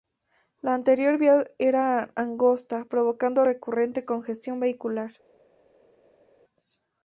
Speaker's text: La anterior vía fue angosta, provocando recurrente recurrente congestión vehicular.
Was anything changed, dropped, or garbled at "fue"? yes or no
yes